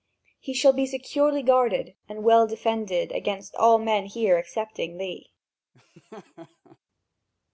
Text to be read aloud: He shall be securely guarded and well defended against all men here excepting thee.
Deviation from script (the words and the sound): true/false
true